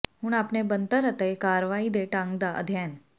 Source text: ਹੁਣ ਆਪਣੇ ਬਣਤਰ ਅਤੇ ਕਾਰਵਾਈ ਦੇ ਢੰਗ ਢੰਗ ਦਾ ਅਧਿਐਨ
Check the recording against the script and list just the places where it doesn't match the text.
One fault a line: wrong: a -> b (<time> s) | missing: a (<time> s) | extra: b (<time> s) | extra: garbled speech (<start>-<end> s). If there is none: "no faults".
missing: ਢੰਗ (2.4 s)